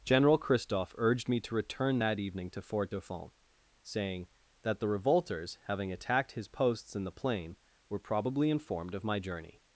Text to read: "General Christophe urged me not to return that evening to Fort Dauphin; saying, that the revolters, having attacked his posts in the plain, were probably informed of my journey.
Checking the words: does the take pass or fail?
fail